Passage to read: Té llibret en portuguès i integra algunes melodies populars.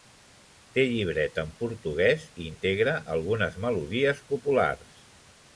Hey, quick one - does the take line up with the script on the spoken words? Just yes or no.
yes